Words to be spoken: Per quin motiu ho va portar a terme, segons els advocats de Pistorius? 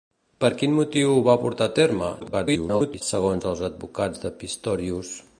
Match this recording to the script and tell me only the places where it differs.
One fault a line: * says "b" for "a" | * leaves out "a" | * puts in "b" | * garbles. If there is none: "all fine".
* garbles